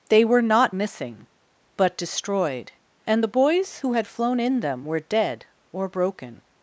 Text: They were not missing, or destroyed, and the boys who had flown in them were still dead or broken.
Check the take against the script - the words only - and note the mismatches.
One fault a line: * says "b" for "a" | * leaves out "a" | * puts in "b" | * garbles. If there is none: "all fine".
* says "but" for "or"
* leaves out "still"